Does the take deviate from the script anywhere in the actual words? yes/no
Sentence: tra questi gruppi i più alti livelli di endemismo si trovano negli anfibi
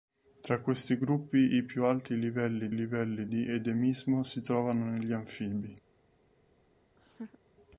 yes